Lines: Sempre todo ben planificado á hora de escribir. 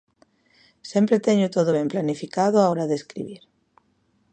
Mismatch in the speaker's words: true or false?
true